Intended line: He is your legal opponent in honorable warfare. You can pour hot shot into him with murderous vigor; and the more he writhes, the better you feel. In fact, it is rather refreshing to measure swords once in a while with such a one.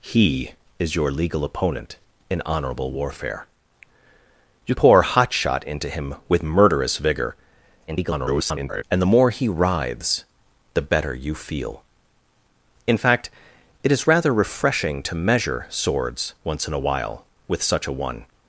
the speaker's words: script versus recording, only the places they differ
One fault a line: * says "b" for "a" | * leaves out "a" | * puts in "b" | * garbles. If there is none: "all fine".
* leaves out "can"
* garbles